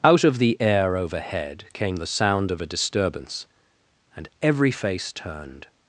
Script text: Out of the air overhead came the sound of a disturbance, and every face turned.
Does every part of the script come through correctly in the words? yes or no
yes